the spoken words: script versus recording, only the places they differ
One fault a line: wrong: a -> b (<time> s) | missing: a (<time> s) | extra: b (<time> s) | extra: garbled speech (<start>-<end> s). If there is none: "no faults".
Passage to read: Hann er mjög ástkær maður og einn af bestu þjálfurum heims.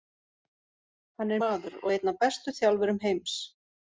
missing: mjög ástkær (1.4 s)